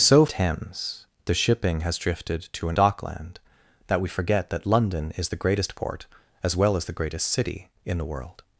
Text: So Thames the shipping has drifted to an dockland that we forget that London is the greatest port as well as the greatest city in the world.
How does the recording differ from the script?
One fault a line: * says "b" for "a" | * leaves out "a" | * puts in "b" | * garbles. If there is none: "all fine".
all fine